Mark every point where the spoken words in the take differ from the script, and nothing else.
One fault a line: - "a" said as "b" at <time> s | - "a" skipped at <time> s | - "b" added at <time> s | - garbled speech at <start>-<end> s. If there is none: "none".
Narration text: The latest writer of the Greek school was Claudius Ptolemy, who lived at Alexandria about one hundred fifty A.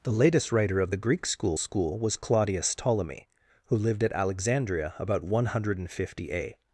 - "school" added at 1.6 s